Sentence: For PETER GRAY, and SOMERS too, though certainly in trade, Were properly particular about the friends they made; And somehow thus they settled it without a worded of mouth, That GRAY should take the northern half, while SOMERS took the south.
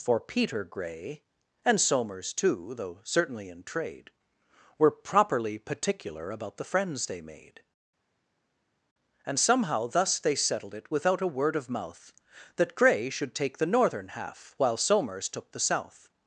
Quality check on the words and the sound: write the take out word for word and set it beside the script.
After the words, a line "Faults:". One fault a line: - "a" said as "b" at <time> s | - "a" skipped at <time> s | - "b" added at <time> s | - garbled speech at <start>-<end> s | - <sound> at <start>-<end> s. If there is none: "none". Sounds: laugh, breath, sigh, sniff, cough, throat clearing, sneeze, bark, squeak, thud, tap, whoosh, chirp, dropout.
For PETER GRAY, and SOMERS too, though certainly in trade, Were properly particular about the friends they made; And somehow thus they settled it without a word of mouth, That GRAY should take the northern half, while SOMERS took the south.
Faults:
- "worded" said as "word" at 11.3 s